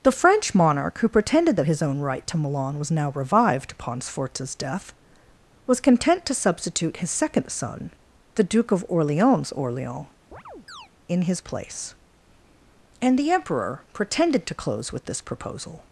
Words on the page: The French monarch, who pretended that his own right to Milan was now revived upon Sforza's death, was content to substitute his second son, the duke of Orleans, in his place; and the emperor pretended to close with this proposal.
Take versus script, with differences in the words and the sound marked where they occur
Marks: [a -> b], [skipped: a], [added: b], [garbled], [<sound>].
The French monarch, who pretended that his own right to Milan was now revived upon Sforza's death, was content to substitute his second son, the duke of Orleans, [added: Orleans] [chirp] in his place; and the emperor pretended to close with this proposal.